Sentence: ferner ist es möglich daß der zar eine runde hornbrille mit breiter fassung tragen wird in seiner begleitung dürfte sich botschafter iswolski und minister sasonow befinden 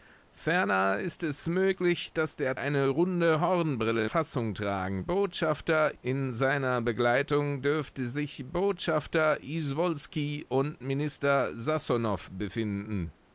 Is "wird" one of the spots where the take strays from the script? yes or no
yes